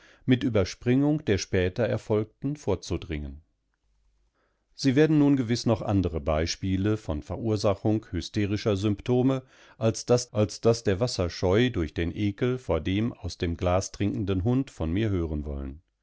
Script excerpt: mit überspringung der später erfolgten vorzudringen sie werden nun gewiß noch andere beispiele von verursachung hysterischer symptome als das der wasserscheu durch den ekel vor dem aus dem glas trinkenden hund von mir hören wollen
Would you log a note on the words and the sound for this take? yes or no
yes